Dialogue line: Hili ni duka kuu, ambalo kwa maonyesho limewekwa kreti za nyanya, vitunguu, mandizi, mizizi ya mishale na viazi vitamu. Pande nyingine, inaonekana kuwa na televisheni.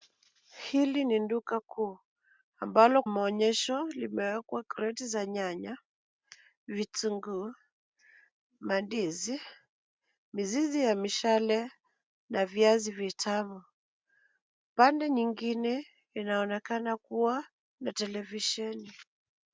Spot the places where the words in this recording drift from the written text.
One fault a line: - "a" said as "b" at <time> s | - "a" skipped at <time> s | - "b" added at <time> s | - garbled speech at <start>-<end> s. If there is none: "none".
- "kwa" skipped at 3.0 s